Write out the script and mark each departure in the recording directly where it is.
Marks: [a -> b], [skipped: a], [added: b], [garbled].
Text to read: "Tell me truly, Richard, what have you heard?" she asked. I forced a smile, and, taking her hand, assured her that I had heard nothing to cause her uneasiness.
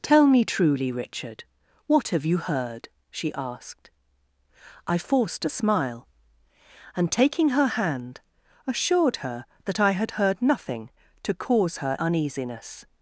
"Tell me truly, Richard, what have you heard?" she asked. I forced a smile, and, taking her hand, assured her that I had heard nothing to cause her uneasiness.